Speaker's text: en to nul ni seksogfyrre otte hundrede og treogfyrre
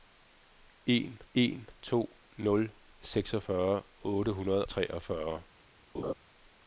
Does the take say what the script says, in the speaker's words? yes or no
no